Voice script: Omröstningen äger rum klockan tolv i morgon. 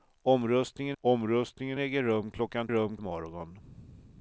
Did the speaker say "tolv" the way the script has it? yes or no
no